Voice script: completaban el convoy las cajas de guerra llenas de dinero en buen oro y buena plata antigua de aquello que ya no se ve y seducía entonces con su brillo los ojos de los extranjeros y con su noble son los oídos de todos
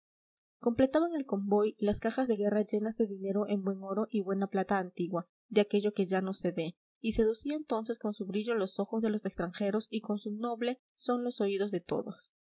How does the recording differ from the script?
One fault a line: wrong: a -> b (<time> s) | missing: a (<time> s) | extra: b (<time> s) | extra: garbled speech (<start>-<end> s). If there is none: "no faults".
no faults